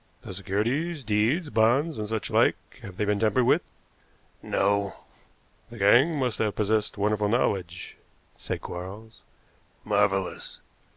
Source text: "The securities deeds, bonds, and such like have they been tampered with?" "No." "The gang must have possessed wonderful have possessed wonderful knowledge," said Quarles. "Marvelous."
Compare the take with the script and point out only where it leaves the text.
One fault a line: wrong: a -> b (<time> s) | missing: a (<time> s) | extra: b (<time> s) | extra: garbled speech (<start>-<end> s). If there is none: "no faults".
missing: have possessed wonderful (7.3 s)